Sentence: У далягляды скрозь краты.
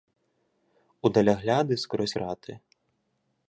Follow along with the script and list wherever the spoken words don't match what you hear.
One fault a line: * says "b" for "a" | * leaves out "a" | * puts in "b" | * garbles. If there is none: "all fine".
all fine